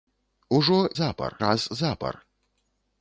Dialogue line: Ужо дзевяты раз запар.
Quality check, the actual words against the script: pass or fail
fail